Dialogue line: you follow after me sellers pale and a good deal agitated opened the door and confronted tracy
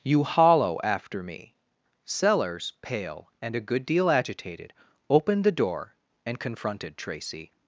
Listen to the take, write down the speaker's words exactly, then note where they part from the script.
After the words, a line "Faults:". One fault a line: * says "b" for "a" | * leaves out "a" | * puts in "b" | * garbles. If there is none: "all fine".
you hollow after me sellers pale and a good deal agitated opened the door and confronted tracy
Faults:
* says "hollow" for "follow"